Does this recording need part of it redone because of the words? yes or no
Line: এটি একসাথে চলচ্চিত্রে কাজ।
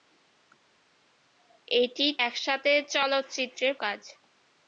no